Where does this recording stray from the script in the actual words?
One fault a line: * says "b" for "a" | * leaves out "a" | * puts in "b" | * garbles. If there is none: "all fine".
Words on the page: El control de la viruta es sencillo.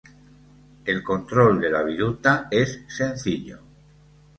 all fine